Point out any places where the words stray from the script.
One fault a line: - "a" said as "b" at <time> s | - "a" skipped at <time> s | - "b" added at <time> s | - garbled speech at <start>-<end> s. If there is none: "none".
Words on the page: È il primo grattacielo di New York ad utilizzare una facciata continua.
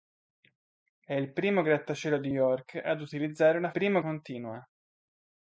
- "New" skipped at 2.3 s
- "facciata" said as "primo" at 3.7 s